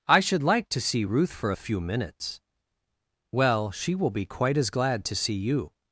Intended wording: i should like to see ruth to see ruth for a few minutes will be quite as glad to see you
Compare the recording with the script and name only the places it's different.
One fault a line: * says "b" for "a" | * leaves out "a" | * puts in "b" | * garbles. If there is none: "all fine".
* leaves out "to see ruth"
* puts in "well she"